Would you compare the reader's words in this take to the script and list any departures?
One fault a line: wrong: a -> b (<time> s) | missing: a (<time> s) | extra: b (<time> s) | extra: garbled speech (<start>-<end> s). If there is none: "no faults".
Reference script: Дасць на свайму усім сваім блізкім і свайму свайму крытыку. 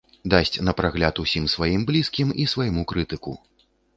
wrong: свайму -> прагляд (0.8 s)
missing: свайму (2.9 s)